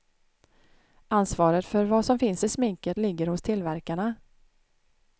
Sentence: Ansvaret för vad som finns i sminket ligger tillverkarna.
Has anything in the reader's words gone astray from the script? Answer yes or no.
yes